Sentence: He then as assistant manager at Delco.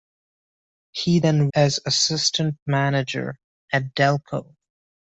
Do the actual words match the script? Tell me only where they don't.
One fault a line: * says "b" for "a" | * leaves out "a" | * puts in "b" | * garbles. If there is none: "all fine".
all fine